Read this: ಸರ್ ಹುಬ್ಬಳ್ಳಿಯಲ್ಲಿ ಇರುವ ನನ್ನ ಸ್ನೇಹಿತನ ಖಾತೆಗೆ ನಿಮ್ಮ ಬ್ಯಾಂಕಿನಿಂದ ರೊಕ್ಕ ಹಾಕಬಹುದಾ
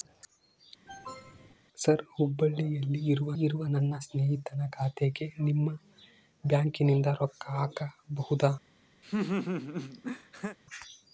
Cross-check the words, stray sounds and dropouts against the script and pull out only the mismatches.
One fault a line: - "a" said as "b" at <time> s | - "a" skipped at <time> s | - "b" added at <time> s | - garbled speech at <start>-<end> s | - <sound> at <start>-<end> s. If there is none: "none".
- cough at 0.9-1.5 s
- "ಇರುವ" added at 3.4 s
- laugh at 9.0-10.6 s